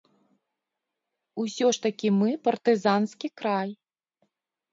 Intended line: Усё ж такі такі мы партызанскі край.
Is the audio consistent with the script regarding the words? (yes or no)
no